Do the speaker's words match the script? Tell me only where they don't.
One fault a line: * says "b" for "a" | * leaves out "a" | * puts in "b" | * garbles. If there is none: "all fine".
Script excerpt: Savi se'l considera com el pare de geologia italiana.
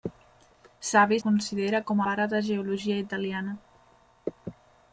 * leaves out "se'l"
* leaves out "el"